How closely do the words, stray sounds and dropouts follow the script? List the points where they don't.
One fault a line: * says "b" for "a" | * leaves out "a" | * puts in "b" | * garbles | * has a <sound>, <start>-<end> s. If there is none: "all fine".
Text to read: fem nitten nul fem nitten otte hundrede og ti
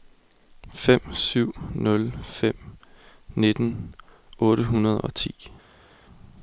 * says "syv" for "nitten"